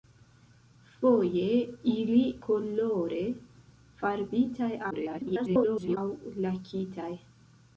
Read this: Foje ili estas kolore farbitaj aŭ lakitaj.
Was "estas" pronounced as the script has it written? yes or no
no